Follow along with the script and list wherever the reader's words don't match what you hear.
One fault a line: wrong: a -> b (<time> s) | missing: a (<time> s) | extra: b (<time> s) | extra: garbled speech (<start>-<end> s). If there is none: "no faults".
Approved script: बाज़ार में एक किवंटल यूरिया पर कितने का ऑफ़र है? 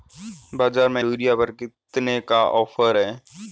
missing: एक किवंटल (1.0 s)